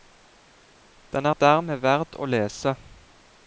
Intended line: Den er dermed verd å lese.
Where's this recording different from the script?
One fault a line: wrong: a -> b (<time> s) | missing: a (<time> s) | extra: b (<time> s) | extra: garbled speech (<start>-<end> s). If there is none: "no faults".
no faults